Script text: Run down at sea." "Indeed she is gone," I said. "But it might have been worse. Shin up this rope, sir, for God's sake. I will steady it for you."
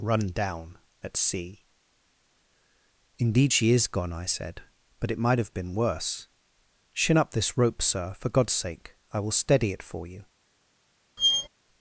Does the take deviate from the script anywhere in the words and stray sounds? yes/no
yes